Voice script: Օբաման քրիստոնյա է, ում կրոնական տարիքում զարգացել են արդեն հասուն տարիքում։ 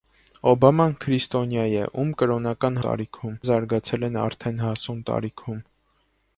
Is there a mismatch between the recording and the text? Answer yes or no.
no